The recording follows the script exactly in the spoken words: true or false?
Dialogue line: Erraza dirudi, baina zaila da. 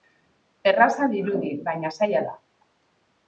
true